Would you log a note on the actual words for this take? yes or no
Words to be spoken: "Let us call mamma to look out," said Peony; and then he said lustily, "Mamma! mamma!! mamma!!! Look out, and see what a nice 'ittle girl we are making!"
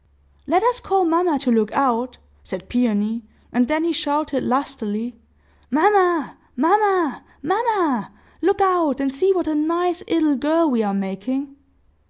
yes